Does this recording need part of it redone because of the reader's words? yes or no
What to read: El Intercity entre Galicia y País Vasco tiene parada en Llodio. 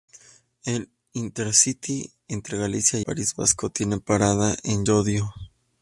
no